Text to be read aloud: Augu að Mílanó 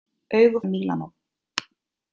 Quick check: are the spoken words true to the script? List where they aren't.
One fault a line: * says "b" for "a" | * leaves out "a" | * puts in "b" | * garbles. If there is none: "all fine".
all fine